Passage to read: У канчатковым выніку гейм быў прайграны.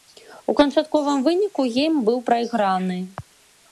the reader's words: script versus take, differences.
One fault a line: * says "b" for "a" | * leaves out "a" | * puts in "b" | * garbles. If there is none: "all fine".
all fine